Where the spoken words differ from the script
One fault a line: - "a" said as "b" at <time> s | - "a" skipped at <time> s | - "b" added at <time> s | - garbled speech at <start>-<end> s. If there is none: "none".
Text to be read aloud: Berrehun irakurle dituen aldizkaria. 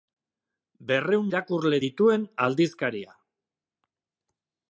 none